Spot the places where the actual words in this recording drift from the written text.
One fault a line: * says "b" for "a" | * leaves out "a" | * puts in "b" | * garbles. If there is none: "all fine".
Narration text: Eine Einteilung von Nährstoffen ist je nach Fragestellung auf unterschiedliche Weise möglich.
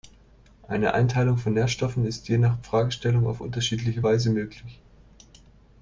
all fine